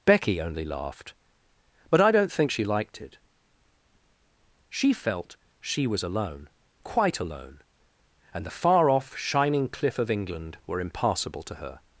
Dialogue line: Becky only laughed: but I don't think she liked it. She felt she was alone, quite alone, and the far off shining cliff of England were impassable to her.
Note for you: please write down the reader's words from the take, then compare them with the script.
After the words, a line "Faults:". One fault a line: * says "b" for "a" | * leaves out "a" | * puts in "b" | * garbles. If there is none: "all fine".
Becky only laughed: but I don't think she liked it. She felt she was alone, quite alone, and the far off shining cliff of England were impassable to her.
Faults:
all fine